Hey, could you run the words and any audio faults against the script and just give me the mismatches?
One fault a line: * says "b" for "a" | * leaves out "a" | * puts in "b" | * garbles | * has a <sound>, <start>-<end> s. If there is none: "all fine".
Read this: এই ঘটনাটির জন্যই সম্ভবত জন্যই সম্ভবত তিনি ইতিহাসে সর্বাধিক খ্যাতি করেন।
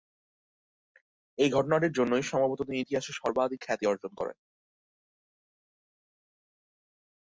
* leaves out "জন্যই সম্ভবত"
* puts in "অর্জন"